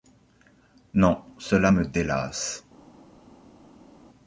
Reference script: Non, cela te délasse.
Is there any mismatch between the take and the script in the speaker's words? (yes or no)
yes